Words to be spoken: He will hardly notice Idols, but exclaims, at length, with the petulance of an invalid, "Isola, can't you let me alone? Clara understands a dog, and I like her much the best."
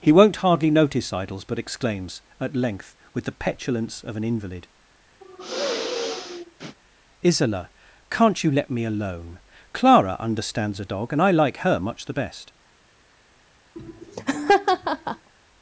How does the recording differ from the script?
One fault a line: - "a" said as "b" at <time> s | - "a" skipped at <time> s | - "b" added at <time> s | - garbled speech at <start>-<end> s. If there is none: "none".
- "will" said as "won't" at 0.1 s